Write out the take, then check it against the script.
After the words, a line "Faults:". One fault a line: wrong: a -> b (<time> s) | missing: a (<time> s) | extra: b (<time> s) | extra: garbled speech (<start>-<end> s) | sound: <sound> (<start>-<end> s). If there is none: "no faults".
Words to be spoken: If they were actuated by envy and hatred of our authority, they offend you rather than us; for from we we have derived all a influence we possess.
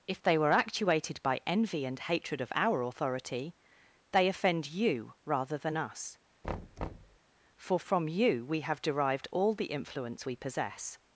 If they were actuated by envy and hatred of our authority, they offend you rather than us; for from you we have derived all the influence we possess.
Faults:
sound: thud (6.4-7.2 s)
wrong: we -> you (8.1 s)
wrong: a -> the (9.5 s)